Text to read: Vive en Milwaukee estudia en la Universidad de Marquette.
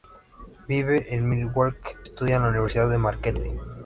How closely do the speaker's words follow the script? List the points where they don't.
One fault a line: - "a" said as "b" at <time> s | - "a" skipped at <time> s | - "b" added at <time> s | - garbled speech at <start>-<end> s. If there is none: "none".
none